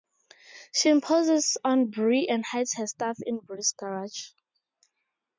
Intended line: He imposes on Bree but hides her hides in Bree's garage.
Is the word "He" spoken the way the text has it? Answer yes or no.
no